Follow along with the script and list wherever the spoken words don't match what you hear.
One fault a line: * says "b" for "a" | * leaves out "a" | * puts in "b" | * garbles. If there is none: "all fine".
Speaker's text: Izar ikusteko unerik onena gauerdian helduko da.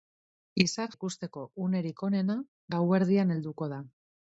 all fine